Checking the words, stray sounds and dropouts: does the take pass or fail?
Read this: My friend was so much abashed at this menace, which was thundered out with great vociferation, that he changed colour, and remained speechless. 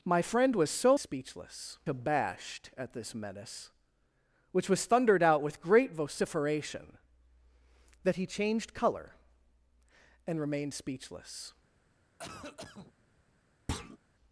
fail